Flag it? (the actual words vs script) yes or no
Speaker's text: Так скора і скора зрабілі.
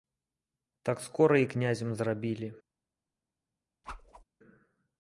yes